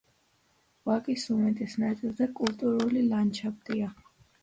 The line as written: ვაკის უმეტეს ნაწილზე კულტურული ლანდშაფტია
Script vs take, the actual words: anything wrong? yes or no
no